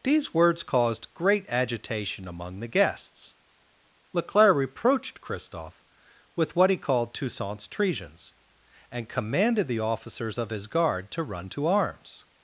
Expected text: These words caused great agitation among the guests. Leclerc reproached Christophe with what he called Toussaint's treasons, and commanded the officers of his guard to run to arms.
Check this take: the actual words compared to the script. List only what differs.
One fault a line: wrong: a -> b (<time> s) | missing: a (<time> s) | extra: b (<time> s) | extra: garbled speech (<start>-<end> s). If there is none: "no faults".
no faults